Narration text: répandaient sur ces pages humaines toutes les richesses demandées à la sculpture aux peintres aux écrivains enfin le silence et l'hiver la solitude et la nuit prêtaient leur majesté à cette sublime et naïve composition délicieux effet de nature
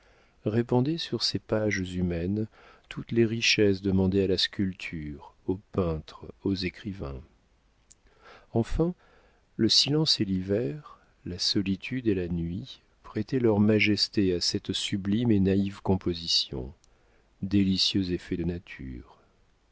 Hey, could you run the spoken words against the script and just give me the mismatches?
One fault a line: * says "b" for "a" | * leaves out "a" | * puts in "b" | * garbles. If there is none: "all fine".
all fine